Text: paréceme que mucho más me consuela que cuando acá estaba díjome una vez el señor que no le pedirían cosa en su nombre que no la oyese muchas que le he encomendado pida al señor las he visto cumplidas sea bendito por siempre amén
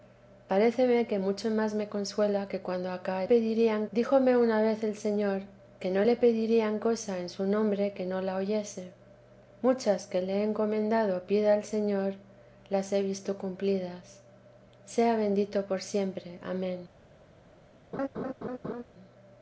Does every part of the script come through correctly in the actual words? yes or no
no